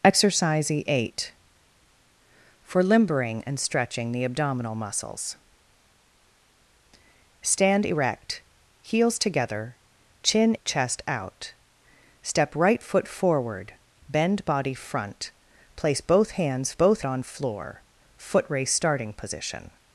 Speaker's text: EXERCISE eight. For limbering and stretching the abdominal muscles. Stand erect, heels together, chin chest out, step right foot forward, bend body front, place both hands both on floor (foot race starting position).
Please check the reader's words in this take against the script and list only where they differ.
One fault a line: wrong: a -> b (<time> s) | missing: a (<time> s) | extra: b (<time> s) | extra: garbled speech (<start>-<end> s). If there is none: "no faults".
no faults